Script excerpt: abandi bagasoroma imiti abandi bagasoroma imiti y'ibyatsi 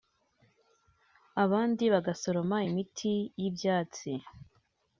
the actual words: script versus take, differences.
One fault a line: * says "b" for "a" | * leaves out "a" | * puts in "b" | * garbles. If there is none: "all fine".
* leaves out "abandi bagasoroma imiti"